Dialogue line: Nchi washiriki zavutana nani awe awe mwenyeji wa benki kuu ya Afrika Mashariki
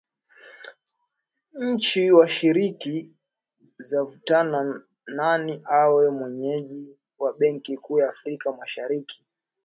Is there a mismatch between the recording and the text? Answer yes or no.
yes